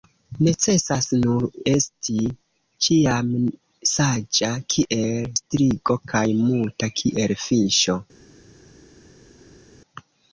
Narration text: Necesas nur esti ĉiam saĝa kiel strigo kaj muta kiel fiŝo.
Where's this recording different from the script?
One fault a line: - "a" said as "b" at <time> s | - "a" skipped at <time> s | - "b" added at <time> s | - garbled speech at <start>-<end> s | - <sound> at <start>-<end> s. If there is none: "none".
none